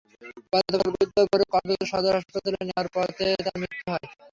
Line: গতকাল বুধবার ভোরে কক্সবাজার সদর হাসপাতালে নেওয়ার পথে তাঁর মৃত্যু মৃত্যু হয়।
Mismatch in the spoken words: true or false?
true